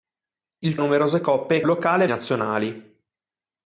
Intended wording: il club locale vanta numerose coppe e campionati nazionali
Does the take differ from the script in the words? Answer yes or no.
yes